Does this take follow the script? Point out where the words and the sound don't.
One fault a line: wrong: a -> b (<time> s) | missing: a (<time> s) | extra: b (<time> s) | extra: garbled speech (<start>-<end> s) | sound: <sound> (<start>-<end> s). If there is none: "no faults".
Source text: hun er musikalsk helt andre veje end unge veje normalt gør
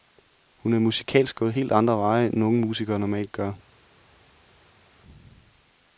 extra: gået (1.4 s)
wrong: veje -> musikere (2.7 s)